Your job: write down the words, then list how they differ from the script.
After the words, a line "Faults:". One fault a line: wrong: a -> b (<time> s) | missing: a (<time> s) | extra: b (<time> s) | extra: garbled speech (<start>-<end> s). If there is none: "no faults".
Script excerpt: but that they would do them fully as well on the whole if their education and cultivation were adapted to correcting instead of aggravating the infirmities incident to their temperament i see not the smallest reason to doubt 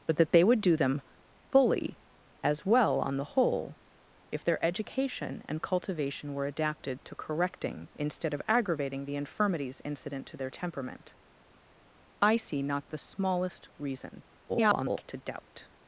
but that they would do them fully as well on the whole if their education and cultivation were adapted to correcting instead of aggravating the infirmities incident to their temperament i see not the smallest reason [garbled] to doubt
Faults:
extra: garbled speech (14.5-15.0 s)